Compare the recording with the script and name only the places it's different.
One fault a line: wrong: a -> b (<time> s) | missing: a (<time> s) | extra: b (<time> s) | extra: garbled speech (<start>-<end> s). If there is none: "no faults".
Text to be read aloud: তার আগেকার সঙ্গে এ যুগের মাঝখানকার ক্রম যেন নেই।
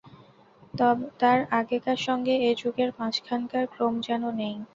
no faults